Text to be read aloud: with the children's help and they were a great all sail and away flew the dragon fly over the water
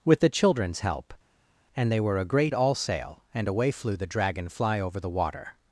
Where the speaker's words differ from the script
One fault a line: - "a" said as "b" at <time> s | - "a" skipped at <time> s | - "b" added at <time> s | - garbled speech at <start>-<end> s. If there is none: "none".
none